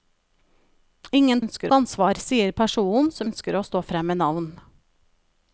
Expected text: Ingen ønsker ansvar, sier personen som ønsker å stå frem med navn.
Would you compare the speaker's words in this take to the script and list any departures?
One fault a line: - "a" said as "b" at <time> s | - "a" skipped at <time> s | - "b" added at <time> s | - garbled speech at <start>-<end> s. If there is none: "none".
none